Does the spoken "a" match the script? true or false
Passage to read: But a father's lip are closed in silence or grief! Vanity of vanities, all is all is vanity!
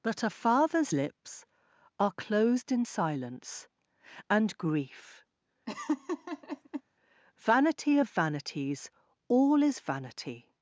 true